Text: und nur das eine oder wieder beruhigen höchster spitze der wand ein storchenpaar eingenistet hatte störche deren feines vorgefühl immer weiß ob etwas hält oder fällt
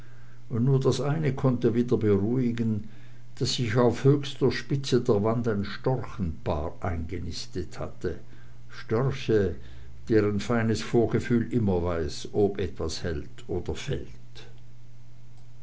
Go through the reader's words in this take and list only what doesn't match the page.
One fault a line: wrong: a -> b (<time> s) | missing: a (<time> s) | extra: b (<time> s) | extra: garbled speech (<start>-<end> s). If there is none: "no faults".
wrong: oder -> konnte (1.4 s)
extra: daß sich auf (3.4 s)